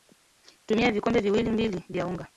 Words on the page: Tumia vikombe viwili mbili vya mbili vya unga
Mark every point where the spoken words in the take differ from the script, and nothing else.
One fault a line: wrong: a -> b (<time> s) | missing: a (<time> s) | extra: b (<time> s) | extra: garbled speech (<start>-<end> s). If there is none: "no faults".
missing: mbili vya (2.1 s)